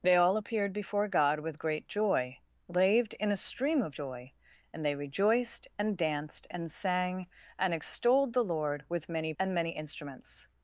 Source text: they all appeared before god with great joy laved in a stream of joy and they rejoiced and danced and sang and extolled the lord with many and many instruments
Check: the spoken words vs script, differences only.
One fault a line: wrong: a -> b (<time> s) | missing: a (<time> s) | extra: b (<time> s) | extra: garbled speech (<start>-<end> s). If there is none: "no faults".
no faults